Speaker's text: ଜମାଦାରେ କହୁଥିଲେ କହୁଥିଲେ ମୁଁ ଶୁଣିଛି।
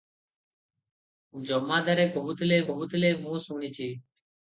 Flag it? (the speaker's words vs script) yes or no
no